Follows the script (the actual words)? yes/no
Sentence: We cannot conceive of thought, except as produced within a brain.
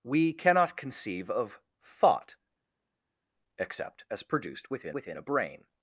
no